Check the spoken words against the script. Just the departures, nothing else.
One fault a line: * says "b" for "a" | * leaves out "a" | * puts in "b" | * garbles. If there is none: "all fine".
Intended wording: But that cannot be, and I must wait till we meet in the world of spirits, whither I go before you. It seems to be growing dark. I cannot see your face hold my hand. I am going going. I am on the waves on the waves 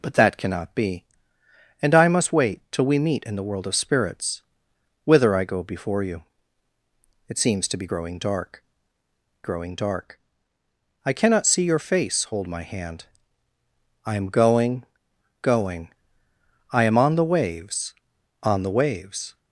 * puts in "growing dark"